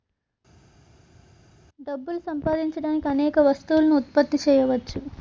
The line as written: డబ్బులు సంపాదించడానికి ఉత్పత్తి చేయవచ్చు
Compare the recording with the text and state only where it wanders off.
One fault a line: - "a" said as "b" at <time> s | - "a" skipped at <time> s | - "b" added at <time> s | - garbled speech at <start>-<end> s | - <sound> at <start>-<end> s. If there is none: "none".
- "అనేక వస్తువులను" added at 3.1 s